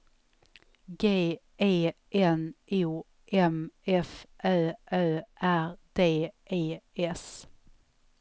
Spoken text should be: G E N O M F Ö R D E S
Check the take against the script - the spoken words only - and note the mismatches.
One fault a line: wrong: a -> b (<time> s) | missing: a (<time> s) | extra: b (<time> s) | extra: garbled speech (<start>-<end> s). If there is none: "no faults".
extra: Ö (4.9 s)